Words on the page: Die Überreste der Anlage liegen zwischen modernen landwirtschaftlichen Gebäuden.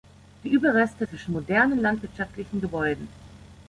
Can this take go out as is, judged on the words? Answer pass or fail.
fail